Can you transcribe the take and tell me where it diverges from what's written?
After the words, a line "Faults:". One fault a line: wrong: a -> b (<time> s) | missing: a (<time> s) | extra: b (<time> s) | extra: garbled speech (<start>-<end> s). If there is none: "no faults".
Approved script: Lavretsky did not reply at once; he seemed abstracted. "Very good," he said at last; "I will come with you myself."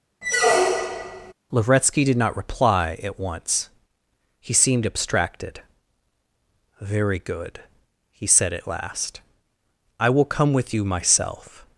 Lavretsky did not reply at once; he seemed abstracted. "Very good," he said at last; "I will come with you myself."
Faults:
no faults